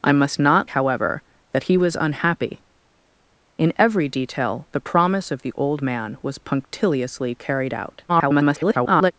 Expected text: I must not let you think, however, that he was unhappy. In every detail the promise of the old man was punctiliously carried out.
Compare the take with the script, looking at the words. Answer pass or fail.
fail